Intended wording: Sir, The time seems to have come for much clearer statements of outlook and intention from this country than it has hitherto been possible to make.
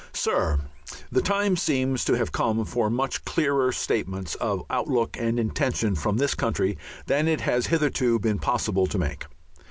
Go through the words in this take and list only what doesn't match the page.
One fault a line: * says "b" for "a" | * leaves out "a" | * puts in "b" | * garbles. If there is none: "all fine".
all fine